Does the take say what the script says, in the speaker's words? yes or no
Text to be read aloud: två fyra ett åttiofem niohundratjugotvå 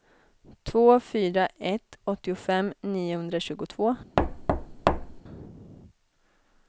yes